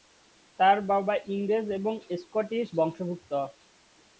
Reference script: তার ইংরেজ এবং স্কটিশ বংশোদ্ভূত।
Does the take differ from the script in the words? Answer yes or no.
yes